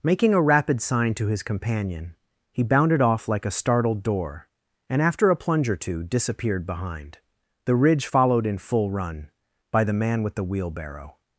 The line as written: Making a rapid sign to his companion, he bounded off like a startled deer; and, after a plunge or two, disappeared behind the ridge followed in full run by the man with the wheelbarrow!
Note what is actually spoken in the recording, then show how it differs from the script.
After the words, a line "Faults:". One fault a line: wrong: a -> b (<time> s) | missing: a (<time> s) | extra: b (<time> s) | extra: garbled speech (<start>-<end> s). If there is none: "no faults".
Making a rapid sign to his companion, he bounded off like a startled door; and, after a plunge or two, disappeared behind the ridge followed in full run by the man with the wheelbarrow!
Faults:
wrong: deer -> door (4.0 s)